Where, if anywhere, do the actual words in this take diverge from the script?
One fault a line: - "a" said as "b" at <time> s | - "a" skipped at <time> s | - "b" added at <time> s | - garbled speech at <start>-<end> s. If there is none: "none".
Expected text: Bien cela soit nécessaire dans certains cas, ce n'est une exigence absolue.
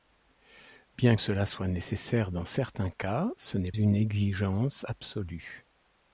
none